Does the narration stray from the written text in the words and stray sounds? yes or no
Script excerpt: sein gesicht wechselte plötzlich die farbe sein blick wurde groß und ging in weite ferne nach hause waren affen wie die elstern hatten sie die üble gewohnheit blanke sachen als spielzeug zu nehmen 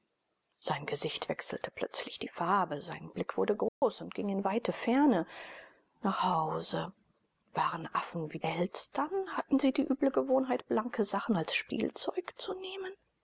yes